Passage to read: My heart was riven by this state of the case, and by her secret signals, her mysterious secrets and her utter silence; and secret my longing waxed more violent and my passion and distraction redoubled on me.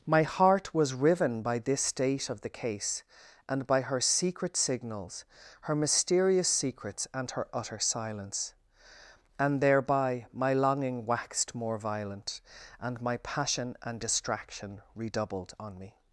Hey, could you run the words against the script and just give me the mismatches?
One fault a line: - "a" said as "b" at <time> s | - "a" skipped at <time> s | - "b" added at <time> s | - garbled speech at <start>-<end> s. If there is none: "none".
- "secret" said as "thereby" at 9.6 s